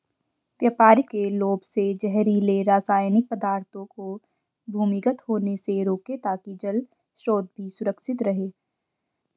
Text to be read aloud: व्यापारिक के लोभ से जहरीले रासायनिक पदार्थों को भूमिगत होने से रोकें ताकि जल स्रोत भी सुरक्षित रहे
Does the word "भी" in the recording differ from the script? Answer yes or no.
no